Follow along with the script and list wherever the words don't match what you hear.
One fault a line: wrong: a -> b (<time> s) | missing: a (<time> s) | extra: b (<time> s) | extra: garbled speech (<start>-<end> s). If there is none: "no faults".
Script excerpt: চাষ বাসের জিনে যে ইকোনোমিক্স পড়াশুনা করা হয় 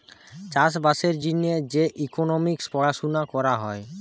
no faults